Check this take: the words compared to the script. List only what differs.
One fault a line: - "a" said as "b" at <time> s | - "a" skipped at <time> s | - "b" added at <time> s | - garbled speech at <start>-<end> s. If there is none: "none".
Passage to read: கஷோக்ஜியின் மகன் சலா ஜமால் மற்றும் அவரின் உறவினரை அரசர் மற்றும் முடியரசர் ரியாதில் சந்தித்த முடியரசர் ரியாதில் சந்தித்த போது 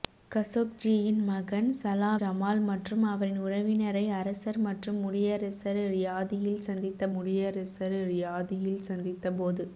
none